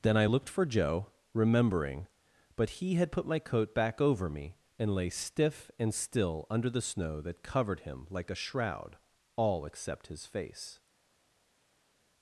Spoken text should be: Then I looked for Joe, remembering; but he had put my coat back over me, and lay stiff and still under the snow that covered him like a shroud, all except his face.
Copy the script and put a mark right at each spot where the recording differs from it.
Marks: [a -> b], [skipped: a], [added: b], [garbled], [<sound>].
Then I looked for Joe, remembering; but he had put my coat back over me, and lay stiff and still under the snow that covered him like a shroud, all except his face.